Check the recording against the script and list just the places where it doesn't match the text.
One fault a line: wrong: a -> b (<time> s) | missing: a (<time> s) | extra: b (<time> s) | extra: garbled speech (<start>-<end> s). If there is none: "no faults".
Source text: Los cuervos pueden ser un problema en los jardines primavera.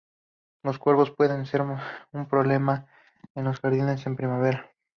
extra: en (4.1 s)